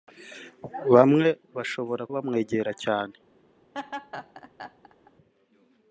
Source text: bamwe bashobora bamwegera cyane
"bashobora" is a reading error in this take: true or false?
false